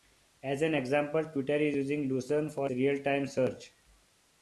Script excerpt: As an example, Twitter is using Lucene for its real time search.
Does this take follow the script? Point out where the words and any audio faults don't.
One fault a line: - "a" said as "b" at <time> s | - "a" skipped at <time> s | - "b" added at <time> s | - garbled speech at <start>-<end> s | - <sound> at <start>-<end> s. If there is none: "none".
- "its" skipped at 2.7 s